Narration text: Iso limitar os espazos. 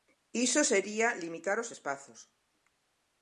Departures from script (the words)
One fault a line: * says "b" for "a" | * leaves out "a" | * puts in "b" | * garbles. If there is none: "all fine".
* puts in "sería"